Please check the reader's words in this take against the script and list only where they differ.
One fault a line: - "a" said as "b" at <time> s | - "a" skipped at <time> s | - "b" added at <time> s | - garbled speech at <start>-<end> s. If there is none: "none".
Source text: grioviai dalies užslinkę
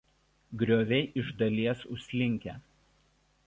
- "iš" added at 1.2 s